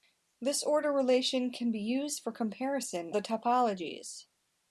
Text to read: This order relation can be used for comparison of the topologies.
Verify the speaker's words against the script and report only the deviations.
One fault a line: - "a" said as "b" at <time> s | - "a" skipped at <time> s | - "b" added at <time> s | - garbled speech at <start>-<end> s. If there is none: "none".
- "of" skipped at 3.1 s